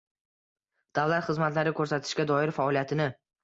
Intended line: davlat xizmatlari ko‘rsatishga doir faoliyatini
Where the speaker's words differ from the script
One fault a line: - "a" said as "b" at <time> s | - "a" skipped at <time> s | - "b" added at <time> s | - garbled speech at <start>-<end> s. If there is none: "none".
none